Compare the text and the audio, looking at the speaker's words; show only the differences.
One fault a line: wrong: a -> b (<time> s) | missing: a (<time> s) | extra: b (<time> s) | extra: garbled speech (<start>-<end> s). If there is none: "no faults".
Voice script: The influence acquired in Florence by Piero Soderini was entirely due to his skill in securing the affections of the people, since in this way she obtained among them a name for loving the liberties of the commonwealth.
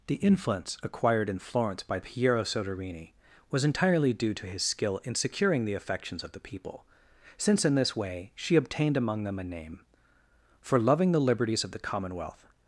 no faults